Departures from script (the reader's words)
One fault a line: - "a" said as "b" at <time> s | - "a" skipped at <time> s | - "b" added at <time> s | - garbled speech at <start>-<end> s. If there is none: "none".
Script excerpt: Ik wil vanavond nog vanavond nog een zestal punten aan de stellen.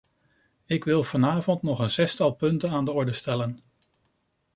- "vanavond nog" skipped at 1.8 s
- "orde" added at 2.9 s